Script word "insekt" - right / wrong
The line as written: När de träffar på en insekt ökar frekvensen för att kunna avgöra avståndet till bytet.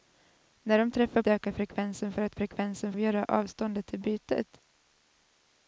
wrong